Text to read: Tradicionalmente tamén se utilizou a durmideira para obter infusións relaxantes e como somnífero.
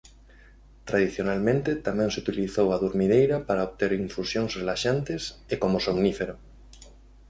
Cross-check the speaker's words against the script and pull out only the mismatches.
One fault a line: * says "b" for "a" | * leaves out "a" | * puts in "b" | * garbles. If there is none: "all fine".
all fine